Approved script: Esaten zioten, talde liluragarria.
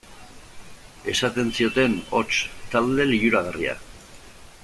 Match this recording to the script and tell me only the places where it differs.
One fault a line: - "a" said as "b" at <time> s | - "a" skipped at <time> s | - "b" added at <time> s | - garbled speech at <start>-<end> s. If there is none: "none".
- "hots" added at 2.2 s